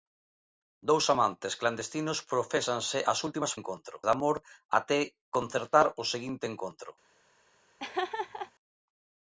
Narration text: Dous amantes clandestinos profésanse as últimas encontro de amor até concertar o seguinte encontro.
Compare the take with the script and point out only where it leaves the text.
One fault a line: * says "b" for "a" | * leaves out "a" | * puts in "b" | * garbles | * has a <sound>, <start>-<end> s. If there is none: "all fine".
* has a laugh, 7.8-8.5 s